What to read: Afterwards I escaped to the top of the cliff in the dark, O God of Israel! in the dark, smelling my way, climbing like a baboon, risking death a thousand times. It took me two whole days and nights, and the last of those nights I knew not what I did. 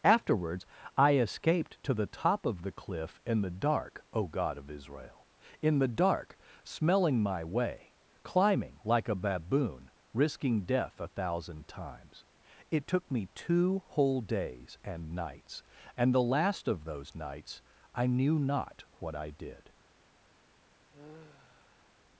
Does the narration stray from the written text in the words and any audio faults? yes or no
yes